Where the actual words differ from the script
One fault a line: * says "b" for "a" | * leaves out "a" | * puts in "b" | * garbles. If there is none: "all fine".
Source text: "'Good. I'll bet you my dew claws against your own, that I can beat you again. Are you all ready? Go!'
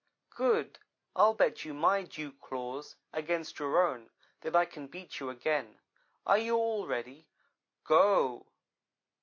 all fine